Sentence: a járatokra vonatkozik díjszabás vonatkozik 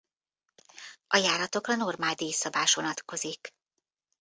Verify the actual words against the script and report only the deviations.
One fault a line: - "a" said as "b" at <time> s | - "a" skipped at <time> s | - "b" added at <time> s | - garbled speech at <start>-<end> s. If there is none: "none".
- "vonatkozik" said as "normál" at 1.8 s